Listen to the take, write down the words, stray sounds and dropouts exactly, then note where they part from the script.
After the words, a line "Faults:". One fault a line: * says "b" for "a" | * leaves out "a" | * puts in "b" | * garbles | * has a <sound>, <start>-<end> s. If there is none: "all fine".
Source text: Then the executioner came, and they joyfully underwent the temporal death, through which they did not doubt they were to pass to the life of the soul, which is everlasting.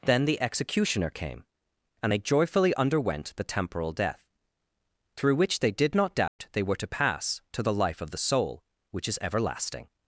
Then the executioner came, and they joyfully underwent the temporal death, through which they did not doubt they were to pass to the life of the soul, which is everlasting.
Faults:
* has a dropout, 6.3-6.4 s